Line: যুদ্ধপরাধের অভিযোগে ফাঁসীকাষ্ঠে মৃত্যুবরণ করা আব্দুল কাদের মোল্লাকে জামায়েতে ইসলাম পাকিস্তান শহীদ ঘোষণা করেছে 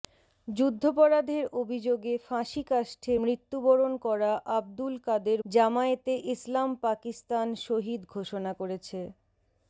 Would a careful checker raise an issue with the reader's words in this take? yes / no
yes